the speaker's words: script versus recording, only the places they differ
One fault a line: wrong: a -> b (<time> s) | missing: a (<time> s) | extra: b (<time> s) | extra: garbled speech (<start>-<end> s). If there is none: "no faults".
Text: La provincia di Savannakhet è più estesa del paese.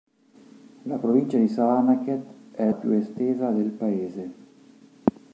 no faults